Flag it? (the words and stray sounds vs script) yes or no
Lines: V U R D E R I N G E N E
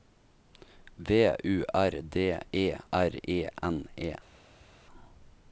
yes